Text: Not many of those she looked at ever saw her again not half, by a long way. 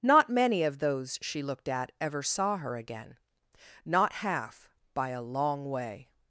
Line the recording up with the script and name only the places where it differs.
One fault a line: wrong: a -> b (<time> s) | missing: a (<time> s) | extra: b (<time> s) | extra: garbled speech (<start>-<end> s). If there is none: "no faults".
no faults